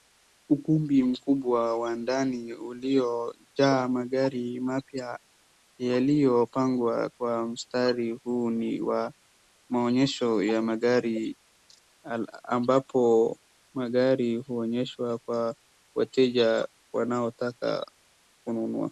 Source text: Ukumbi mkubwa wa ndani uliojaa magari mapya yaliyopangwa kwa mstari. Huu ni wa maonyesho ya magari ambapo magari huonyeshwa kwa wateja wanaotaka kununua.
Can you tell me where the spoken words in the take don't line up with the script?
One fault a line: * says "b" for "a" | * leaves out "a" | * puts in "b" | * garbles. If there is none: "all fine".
all fine